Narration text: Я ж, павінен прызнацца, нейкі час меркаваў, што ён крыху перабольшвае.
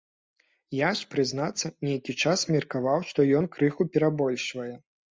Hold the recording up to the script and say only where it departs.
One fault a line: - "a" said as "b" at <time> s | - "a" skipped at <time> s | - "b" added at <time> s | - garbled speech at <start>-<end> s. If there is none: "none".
- "павінен" skipped at 1.1 s